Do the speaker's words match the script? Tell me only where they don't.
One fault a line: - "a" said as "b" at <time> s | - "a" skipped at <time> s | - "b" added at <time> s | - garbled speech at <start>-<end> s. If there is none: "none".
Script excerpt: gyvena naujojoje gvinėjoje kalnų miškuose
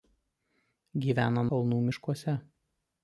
- "naujojoje gvinėjoje" skipped at 1.4 s